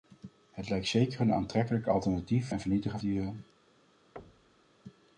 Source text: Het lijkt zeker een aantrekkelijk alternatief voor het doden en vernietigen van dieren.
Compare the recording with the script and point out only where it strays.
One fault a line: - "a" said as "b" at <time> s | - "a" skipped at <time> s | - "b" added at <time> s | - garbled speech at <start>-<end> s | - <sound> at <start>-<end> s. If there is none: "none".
- "voor het doden" skipped at 2.5 s
- "van" skipped at 3.0 s
- thud at 4.2-4.7 s